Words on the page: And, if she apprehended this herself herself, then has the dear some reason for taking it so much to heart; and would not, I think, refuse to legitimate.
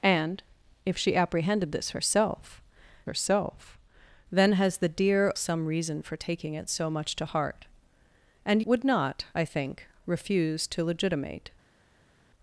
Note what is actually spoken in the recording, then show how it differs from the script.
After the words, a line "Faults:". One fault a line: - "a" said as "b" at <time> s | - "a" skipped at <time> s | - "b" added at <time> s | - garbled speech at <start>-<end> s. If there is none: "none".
And, if she apprehended this herself herself, then has the dear some reason for taking it so much to heart; and would not, I think, refuse to legitimate.
Faults:
none